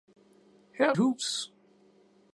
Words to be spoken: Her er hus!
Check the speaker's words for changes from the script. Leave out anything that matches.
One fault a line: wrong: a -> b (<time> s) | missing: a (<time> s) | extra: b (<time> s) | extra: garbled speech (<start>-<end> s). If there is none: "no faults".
no faults